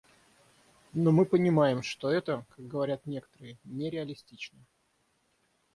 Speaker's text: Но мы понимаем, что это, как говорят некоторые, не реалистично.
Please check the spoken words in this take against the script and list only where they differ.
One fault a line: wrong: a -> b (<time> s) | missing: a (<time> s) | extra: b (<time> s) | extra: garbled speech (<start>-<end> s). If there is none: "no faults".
no faults